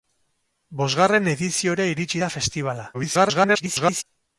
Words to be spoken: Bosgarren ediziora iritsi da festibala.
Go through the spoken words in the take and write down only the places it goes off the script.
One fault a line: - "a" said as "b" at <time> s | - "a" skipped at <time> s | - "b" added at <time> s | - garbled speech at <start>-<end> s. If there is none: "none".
- garbled speech at 2.9-4.0 s